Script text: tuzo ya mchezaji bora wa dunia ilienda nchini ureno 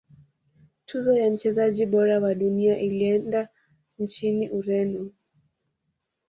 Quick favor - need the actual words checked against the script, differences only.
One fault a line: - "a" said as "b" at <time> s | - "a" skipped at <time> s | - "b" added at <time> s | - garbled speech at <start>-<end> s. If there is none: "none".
none